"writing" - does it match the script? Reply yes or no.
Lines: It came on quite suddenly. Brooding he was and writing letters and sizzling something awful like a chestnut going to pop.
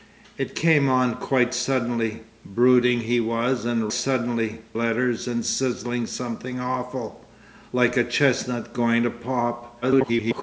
no